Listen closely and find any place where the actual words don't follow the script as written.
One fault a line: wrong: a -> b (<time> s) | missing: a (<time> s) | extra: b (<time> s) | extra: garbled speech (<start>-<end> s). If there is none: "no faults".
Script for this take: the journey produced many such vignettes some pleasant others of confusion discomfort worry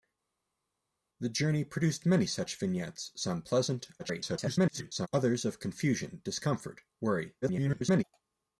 extra: garbled speech (4.0-5.1 s)
extra: garbled speech (7.4-8.0 s)